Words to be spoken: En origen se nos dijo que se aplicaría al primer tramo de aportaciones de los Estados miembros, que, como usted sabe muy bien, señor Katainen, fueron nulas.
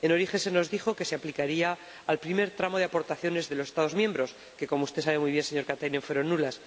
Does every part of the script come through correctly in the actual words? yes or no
yes